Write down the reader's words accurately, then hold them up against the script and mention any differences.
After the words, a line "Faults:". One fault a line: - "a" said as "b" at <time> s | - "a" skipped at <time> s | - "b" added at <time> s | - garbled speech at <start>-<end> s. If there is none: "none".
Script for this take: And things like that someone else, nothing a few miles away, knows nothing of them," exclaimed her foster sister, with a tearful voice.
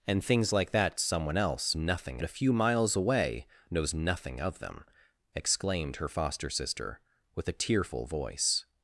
And things like that someone else, nothing a few miles away, knows nothing of them," exclaimed her foster sister, with a tearful voice.
Faults:
none